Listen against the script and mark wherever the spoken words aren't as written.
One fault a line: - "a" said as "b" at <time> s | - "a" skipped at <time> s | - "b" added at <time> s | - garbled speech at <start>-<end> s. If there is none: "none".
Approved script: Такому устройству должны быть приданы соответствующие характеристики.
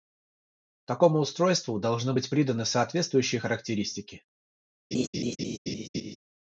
none